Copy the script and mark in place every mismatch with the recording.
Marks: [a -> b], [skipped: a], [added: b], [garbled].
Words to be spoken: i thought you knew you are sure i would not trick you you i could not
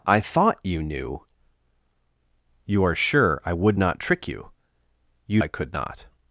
i thought you knew you are sure i would not trick you you i could not